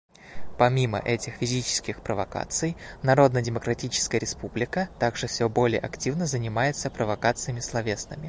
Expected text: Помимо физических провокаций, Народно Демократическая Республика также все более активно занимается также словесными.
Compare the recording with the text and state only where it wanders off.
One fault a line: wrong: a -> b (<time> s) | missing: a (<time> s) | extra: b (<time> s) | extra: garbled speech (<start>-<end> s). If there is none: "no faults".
extra: этих (1.0 s)
wrong: также -> провокациями (6.9 s)